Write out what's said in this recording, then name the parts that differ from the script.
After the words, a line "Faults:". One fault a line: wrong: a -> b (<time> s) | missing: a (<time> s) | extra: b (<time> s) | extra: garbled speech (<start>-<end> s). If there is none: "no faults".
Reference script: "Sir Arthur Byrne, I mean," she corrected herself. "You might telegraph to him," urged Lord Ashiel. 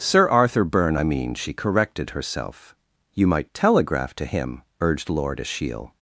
"Sir Arthur Byrne, I mean," she corrected herself. "You might telegraph to him," urged Lord Ashiel.
Faults:
no faults